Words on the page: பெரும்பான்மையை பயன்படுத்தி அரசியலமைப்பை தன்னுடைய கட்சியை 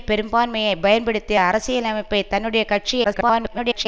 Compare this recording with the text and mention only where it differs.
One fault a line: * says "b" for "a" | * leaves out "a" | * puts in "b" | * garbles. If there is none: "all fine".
* garbles